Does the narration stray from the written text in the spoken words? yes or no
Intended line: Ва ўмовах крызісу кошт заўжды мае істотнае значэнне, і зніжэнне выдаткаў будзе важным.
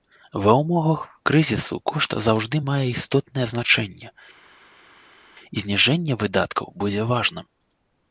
no